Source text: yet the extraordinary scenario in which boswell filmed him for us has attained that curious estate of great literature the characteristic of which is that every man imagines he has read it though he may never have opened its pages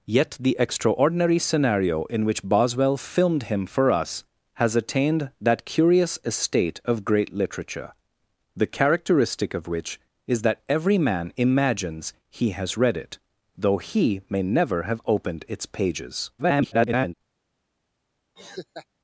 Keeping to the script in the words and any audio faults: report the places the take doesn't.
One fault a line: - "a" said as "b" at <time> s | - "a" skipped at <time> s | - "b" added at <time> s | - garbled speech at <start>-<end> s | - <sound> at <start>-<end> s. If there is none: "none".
- garbled speech at 16.4-17.1 s
- laugh at 18.4-18.9 s